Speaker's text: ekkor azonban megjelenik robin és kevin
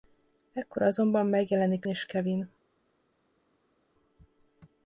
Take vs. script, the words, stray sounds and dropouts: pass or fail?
fail